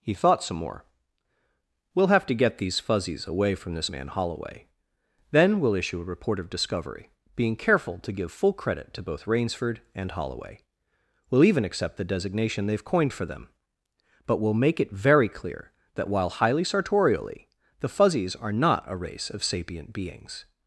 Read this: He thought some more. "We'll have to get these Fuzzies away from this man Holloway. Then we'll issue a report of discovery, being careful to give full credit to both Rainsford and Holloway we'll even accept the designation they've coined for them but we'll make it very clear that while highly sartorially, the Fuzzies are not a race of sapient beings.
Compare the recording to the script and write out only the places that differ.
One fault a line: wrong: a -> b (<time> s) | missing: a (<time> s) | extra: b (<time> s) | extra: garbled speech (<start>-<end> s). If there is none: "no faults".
no faults